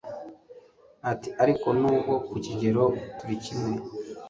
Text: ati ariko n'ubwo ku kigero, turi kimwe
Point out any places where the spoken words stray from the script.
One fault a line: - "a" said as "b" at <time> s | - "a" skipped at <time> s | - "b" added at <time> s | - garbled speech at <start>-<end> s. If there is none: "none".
none